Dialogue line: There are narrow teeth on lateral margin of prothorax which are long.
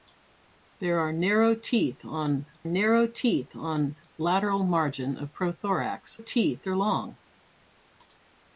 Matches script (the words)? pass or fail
fail